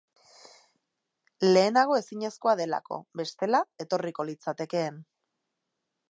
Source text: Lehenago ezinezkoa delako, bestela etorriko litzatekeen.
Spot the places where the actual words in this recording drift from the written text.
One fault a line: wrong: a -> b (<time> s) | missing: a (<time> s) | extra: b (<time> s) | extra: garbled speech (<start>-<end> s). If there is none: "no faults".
no faults